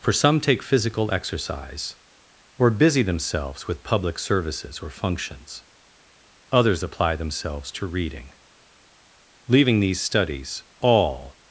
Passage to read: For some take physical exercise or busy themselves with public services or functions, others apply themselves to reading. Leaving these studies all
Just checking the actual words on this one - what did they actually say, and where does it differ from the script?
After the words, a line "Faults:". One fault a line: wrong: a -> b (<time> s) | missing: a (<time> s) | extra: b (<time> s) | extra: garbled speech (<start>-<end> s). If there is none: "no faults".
For some take physical exercise or busy themselves with public services or functions, others apply themselves to reading. Leaving these studies all
Faults:
no faults